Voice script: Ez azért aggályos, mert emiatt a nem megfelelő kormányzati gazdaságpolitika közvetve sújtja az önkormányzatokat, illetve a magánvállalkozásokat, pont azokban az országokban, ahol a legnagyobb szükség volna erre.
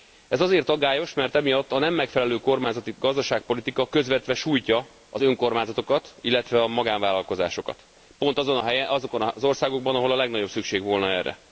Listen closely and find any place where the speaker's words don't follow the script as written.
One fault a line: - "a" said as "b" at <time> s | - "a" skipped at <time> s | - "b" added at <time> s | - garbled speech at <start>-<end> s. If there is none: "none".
none